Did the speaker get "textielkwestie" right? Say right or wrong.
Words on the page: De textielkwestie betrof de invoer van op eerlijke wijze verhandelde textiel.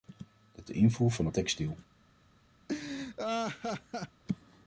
wrong